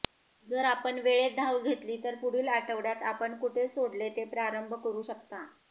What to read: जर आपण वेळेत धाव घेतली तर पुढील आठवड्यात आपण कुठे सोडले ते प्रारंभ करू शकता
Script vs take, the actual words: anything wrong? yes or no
no